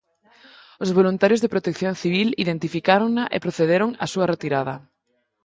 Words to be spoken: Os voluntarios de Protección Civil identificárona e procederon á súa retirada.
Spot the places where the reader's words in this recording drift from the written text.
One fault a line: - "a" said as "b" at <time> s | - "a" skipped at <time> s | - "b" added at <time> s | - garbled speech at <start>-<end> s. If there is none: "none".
none